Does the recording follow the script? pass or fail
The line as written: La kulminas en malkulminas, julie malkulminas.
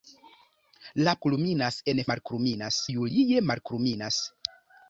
pass